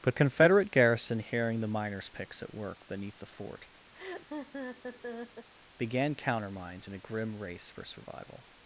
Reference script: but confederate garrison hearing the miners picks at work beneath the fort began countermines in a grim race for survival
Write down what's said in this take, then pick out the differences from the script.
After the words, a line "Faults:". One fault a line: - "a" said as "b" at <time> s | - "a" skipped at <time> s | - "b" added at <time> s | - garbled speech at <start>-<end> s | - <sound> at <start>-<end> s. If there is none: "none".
but confederate garrison hearing the miners picks at work beneath the fort began countermines in a grim race for survival
Faults:
- laugh at 3.9-5.5 s